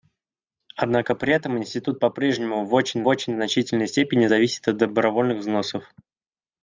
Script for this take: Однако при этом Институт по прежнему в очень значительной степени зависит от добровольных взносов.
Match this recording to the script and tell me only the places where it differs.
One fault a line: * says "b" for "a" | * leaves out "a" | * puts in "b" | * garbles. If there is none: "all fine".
* puts in "очень"